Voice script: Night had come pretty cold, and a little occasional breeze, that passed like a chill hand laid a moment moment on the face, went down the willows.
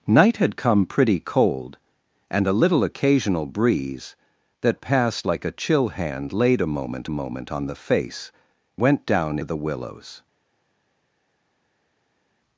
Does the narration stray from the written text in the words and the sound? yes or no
no